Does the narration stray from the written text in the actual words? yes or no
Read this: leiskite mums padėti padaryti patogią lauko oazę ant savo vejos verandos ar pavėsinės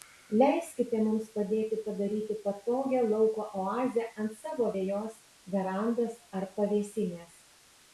no